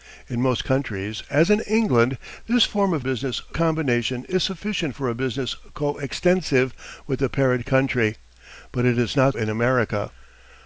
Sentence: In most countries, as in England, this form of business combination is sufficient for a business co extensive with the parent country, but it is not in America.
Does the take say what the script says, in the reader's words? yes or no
yes